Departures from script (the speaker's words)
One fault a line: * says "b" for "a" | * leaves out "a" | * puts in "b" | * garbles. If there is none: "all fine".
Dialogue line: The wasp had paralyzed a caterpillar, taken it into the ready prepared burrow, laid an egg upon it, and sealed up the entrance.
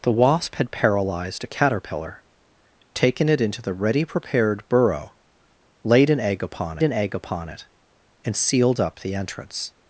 * puts in "an egg upon"